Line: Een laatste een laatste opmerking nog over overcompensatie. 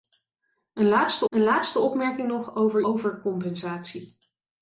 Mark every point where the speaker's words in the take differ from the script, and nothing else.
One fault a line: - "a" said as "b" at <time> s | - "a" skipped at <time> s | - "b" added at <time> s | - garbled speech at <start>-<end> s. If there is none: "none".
none